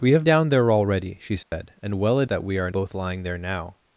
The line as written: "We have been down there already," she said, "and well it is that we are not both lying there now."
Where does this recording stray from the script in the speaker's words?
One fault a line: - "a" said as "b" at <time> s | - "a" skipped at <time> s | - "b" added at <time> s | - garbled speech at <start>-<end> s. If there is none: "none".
- "been" skipped at 0.3 s
- "is" skipped at 2.3 s
- "not" skipped at 2.7 s